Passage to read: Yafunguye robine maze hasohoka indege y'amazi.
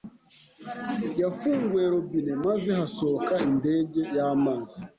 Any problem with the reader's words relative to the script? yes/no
no